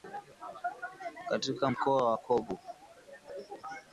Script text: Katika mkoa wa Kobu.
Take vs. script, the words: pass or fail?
pass